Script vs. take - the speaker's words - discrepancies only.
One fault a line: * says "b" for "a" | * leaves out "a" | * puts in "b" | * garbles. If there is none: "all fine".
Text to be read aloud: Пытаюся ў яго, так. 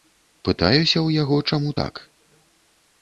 * puts in "чаму"